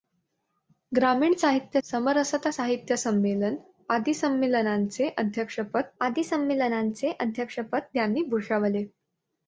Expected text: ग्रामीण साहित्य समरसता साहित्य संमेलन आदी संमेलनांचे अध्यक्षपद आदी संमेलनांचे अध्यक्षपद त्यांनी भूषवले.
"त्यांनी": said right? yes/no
yes